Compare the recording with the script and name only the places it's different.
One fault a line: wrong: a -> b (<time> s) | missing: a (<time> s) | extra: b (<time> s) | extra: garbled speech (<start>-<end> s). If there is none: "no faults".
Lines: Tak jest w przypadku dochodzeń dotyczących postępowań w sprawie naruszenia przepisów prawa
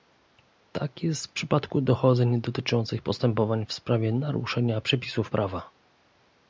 no faults